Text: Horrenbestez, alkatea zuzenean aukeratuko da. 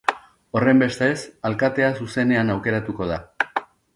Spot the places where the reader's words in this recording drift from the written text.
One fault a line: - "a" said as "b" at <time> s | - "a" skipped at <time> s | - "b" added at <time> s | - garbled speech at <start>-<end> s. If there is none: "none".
none